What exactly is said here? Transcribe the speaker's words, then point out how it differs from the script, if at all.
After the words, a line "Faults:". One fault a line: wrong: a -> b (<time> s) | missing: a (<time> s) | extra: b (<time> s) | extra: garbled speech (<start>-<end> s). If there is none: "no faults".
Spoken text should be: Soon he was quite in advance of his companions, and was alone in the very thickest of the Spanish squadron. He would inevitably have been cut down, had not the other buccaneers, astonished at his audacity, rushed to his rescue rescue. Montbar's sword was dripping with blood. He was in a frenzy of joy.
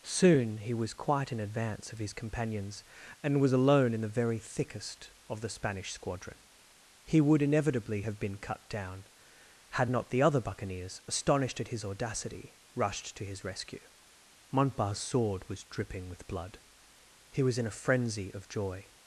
Soon he was quite in advance of his companions, and was alone in the very thickest of the Spanish squadron. He would inevitably have been cut down, had not the other buccaneers, astonished at his audacity, rushed to his rescue. Montbar's sword was dripping with blood. He was in a frenzy of joy.
Faults:
missing: rescue (13.8 s)